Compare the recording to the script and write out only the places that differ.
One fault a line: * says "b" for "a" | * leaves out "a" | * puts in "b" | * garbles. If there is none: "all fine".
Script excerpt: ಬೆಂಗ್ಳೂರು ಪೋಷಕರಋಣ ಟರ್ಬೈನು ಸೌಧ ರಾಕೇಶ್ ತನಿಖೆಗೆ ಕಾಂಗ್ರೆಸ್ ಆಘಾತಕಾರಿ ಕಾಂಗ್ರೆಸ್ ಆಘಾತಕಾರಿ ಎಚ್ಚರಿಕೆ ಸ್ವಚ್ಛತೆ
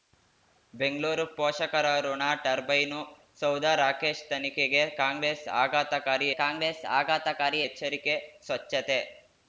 all fine